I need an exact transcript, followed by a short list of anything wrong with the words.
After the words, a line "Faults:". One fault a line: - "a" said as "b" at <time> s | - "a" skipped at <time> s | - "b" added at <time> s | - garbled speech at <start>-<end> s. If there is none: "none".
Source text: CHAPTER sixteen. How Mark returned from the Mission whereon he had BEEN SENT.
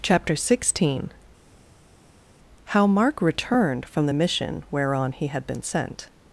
CHAPTER sixteen. How Mark returned from the Mission whereon he had BEEN SENT.
Faults:
none